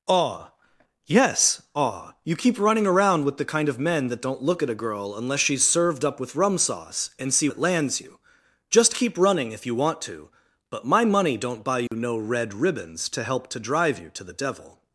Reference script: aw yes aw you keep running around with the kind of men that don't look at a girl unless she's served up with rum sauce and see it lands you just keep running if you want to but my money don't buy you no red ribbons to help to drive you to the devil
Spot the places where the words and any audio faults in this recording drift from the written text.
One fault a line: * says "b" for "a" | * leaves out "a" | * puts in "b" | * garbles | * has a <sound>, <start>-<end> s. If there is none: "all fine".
* has a dropout, 11.9-11.9 s